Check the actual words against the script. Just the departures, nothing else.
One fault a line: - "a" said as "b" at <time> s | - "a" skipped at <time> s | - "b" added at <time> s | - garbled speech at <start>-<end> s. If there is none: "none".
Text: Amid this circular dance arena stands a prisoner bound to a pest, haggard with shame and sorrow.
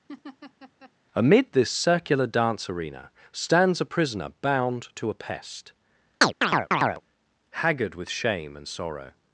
none